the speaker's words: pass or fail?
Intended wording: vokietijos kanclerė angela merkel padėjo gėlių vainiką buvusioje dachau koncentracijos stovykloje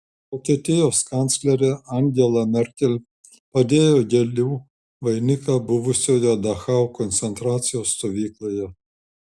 pass